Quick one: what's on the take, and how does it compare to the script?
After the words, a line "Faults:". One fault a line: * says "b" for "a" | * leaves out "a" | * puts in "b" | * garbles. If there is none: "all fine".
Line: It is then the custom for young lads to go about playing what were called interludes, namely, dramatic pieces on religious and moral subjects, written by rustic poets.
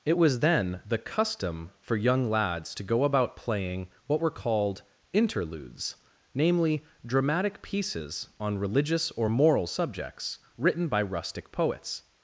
It was then the custom for young lads to go about playing what were called interludes, namely, dramatic pieces on religious or moral subjects, written by rustic poets.
Faults:
* says "was" for "is"
* says "or" for "and"